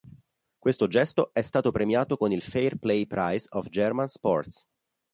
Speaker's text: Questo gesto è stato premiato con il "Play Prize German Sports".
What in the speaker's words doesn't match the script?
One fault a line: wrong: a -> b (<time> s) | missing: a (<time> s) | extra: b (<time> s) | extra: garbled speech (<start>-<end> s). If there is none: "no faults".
extra: Fair (2.4 s)
extra: of (3.5 s)